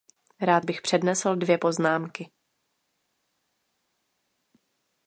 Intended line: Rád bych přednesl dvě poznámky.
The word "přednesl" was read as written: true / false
true